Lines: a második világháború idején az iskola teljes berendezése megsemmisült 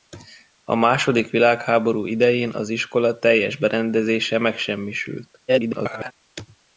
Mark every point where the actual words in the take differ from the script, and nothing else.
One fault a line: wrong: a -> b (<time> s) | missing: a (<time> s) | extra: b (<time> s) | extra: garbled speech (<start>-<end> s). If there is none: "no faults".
extra: garbled speech (5.5-6.1 s)